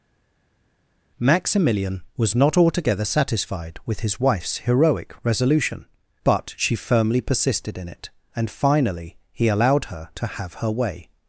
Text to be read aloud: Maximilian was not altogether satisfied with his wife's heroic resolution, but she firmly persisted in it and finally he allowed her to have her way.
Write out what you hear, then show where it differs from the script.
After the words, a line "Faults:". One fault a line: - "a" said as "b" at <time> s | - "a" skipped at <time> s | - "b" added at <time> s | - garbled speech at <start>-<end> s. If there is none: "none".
Maximilian was not altogether satisfied with his wife's heroic resolution, but she firmly persisted in it and finally he allowed her to have her way.
Faults:
none